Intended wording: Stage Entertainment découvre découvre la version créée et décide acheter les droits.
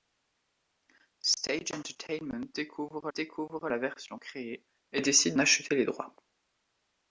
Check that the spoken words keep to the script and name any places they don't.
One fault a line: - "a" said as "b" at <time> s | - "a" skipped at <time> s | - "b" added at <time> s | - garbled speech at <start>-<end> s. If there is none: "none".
none